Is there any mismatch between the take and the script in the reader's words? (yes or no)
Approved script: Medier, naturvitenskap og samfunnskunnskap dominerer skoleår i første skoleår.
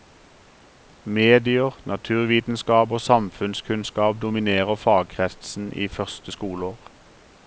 yes